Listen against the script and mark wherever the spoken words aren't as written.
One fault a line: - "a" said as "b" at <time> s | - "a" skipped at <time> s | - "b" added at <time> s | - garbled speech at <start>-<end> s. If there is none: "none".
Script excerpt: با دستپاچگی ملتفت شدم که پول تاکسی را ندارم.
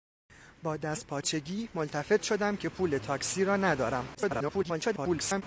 - garbled speech at 4.1-5.4 s